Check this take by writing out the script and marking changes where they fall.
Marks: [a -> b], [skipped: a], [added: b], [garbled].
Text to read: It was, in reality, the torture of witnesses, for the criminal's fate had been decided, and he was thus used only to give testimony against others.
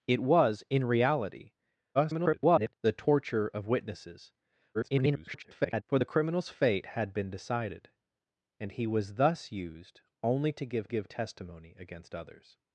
It was, in reality, [garbled] the torture of witnesses, [garbled] for the criminal's fate had been decided, and he was thus used only to give [added: give] testimony against others.